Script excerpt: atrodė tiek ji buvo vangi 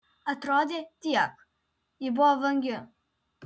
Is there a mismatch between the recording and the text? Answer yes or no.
no